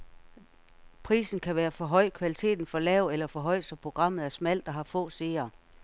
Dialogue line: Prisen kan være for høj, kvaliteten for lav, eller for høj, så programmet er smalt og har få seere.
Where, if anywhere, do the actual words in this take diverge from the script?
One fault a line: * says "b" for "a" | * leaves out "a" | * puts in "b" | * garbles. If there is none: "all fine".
all fine